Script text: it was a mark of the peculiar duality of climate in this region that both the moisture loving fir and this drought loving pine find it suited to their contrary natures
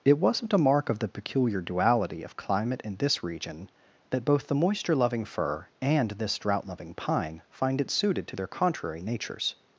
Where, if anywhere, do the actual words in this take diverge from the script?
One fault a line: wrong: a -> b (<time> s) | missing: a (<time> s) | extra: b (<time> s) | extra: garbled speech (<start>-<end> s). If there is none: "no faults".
wrong: was -> wasn't (0.2 s)